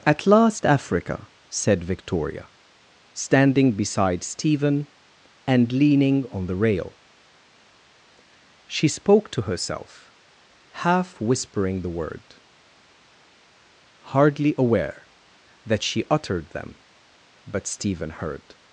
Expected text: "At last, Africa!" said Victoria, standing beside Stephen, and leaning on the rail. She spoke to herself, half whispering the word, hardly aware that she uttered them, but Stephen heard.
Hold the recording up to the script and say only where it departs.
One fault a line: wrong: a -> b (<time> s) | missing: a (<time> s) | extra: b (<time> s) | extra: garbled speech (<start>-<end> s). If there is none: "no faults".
no faults